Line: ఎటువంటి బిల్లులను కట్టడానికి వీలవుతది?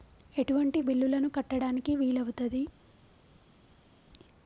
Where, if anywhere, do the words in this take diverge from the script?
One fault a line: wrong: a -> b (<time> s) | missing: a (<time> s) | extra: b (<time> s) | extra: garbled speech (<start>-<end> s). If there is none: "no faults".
no faults